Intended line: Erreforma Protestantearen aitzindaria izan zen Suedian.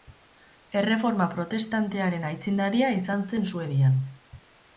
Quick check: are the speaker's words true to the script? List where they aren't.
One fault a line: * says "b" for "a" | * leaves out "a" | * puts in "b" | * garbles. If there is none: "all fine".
all fine